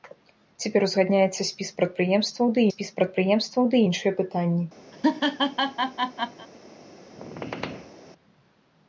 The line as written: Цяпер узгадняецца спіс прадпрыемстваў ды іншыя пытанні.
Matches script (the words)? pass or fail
fail